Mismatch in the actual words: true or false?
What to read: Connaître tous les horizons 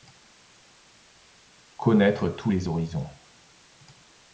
false